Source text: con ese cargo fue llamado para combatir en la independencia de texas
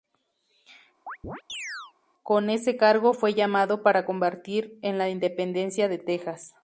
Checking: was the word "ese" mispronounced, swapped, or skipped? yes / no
no